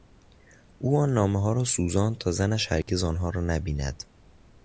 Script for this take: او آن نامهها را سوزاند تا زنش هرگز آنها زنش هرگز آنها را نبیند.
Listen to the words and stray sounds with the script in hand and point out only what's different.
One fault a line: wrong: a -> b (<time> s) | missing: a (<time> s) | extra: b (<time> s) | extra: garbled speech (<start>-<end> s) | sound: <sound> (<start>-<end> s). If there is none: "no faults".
sound: dropout (2.8-2.9 s)
missing: زنش هرگز آنها (3.3 s)